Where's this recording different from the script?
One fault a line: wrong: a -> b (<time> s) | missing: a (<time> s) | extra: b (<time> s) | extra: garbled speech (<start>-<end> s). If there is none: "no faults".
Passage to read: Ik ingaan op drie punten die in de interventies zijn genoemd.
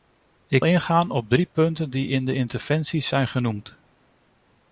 no faults